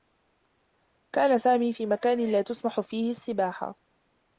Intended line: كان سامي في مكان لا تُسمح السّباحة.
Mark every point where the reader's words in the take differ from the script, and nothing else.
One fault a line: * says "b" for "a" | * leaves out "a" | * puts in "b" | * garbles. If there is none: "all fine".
* puts in "فيه"